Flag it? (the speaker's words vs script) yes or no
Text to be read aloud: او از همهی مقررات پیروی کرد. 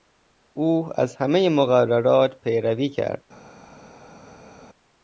no